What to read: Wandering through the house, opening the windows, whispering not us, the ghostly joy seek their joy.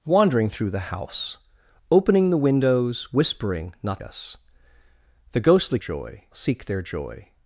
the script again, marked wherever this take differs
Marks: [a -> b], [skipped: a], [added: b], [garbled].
Wandering through the house, opening the windows, whispering not us, the ghostly joy seek their joy.